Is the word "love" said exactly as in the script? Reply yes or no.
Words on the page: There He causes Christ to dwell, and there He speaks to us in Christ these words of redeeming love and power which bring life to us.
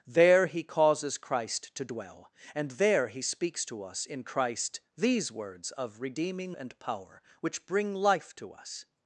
no